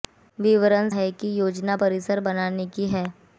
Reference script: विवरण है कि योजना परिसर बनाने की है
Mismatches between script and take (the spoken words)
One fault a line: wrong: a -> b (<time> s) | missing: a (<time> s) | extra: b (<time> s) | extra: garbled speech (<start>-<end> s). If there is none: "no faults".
no faults